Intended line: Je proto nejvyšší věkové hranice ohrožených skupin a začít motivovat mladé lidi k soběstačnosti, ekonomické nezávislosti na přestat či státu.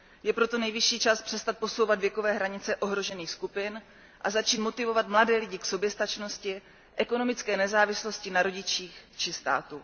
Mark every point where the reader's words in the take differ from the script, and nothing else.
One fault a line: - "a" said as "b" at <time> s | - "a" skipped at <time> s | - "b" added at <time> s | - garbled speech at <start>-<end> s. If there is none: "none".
- "čas přestat posouvat" added at 1.0 s
- "přestat" said as "rodičích" at 8.4 s